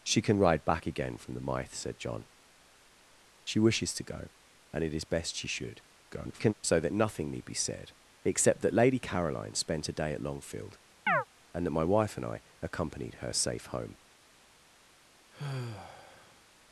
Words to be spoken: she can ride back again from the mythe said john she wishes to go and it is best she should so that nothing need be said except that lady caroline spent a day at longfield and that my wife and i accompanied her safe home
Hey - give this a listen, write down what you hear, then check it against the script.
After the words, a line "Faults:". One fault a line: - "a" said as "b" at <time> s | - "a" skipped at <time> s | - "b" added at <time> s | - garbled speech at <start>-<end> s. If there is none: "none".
she can ride back again from the mythe said john she wishes to go and it is best she should [garbled] so that nothing need be said except that lady caroline spent a day at longfield and that my wife and i accompanied her safe home
Faults:
- garbled speech at 6.1-6.5 s